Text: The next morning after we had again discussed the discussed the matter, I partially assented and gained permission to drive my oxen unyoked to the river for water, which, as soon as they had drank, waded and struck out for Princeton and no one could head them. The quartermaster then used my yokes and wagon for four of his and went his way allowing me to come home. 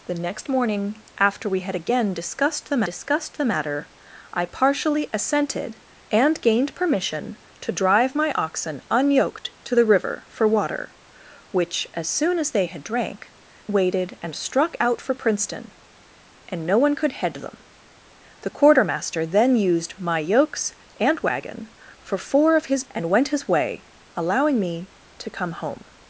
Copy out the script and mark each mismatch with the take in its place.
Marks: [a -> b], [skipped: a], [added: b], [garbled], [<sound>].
The next morning after we had again discussed the discussed the matter, I partially assented and gained permission to drive my oxen unyoked to the river for water, which, as soon as they had drank, waded and struck out for Princeton and no one could head them. The quartermaster then used my yokes and wagon for four of his and went his way allowing me to come home.